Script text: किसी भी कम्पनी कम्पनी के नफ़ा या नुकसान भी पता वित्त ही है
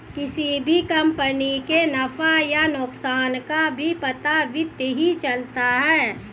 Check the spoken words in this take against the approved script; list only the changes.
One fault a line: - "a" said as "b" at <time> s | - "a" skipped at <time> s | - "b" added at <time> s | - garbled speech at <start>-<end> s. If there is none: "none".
- "कम्पनी" skipped at 1.6 s
- "का" added at 3.4 s
- "चलता" added at 5.2 s